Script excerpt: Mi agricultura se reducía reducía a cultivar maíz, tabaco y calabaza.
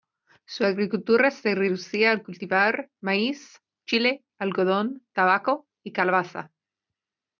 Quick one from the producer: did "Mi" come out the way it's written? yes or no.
no